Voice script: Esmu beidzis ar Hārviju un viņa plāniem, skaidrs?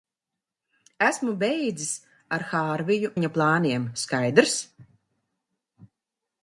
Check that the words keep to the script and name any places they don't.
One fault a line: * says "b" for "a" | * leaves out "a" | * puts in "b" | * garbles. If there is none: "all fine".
* leaves out "un"